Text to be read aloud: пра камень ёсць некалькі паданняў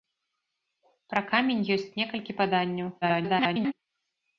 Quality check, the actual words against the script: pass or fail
fail